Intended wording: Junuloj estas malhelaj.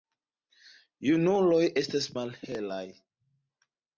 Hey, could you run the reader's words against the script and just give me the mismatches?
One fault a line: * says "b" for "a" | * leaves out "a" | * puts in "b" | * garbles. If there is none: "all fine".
all fine